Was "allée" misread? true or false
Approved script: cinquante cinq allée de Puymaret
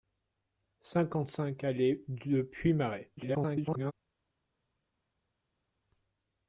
false